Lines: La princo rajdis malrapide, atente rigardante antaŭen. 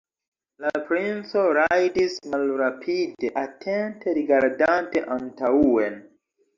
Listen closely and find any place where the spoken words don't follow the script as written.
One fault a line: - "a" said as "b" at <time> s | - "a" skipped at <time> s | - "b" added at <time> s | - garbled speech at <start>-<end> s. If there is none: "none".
none